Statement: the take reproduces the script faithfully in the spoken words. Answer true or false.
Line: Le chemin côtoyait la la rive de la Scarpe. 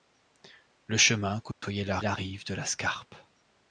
true